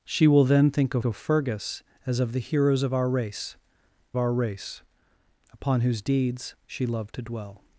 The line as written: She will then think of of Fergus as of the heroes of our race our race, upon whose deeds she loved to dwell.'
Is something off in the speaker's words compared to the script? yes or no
no